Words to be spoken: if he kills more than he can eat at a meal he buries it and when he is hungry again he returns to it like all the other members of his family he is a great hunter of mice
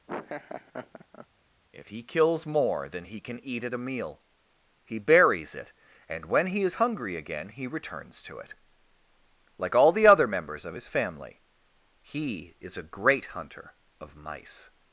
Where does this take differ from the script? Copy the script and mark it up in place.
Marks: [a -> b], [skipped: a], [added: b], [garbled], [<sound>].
[laugh] if he kills more than he can eat at a meal he buries it and when he is hungry again he returns to it like all the other members of his family he is a great hunter of mice